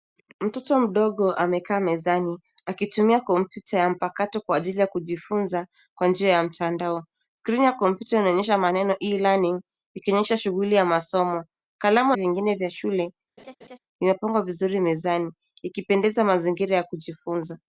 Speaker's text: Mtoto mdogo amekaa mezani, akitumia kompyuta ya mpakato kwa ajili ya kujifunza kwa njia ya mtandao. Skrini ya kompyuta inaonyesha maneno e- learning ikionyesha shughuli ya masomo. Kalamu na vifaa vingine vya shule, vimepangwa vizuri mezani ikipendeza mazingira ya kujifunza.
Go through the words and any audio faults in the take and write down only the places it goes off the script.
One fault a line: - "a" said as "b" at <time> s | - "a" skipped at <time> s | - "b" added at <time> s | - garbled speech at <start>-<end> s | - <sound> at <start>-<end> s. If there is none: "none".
- "na vifaa" skipped at 12.1 s
- laugh at 13.4-13.8 s